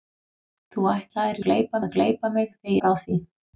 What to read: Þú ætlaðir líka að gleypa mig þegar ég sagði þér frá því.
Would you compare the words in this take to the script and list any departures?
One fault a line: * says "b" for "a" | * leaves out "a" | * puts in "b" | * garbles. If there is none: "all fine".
* says "gleypa" for "líka"
* leaves out "ég sagði þér"